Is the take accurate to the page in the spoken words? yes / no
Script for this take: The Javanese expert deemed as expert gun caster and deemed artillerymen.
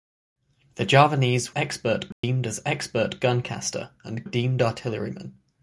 yes